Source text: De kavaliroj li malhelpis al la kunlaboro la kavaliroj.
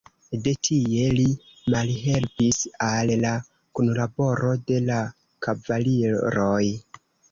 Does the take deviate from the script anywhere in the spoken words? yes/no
yes